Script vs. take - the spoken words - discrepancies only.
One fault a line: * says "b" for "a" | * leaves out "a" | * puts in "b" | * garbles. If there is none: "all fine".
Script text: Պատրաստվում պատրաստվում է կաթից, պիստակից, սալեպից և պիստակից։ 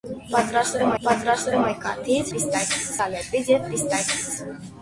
all fine